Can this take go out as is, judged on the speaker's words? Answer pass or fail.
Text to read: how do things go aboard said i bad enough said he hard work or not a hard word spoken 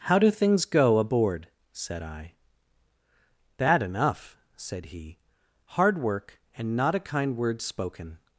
fail